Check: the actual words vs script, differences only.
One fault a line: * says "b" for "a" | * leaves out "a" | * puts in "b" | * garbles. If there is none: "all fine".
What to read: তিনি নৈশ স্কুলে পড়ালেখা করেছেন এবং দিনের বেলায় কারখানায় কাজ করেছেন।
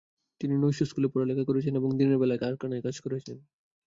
all fine